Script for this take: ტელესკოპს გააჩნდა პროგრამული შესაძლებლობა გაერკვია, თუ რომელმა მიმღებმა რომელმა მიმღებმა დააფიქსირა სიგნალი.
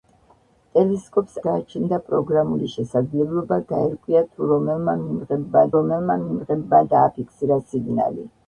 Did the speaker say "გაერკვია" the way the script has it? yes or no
yes